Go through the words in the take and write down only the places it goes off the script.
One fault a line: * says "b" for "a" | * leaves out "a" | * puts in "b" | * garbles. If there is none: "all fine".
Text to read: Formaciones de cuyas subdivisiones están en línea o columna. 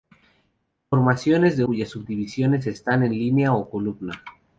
all fine